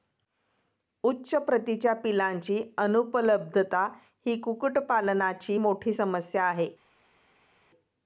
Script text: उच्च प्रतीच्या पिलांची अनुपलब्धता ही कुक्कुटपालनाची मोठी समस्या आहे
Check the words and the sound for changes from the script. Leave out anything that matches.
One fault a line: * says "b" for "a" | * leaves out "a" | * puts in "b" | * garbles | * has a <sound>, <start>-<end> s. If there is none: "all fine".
all fine